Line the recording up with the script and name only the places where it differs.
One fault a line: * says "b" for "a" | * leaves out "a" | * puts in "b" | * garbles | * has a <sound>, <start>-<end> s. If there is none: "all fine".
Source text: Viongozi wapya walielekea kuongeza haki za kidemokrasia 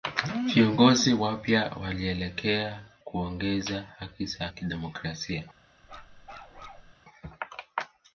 * has a bark, 5.8-6.9 s